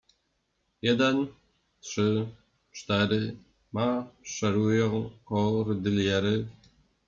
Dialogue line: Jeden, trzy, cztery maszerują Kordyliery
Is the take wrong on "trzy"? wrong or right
right